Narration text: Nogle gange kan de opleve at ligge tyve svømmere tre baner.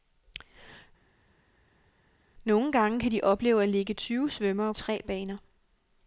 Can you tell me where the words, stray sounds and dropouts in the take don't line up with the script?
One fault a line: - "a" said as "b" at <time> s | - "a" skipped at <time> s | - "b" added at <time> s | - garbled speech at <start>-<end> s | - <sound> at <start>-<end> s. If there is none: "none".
none